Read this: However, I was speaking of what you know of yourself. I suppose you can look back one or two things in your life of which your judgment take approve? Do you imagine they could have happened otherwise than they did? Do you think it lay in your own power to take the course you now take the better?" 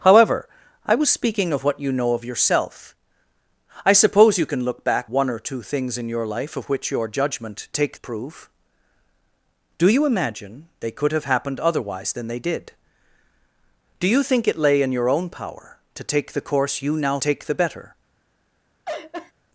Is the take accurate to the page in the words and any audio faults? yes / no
no